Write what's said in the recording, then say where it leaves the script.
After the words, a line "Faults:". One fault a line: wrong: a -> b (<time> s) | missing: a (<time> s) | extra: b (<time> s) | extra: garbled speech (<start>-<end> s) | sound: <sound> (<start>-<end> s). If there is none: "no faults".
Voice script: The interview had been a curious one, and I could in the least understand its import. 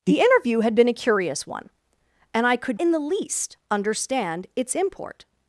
The interview had been a curious one, and I could in the least understand its import.
Faults:
no faults